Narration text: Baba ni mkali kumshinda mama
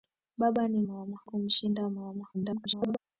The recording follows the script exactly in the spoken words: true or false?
false